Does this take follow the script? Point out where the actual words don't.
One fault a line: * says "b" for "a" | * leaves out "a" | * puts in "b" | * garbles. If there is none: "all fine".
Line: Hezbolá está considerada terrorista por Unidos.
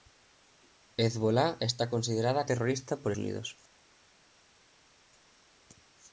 all fine